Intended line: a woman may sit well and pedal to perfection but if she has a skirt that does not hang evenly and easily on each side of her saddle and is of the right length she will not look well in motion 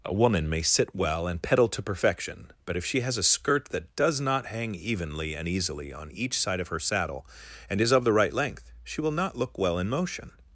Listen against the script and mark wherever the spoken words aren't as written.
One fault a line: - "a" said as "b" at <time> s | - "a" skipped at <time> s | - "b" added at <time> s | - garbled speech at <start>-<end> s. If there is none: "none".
none